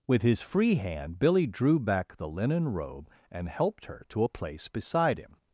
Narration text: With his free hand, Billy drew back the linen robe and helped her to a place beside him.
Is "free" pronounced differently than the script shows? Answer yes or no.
no